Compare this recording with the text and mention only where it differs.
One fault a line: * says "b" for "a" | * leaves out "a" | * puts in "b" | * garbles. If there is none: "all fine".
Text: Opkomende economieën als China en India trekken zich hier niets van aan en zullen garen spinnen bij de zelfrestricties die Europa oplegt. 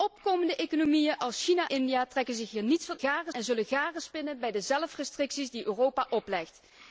* leaves out "en"
* says "garen" for "aan"